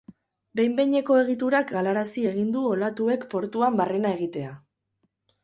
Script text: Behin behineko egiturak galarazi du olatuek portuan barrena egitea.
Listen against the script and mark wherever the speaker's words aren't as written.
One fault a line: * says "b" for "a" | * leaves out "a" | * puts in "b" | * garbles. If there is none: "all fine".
* puts in "egin"